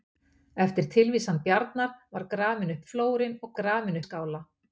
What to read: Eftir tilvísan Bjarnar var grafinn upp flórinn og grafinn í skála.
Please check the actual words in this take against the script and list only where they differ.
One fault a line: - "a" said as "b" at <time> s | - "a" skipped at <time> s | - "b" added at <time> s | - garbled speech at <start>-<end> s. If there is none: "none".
none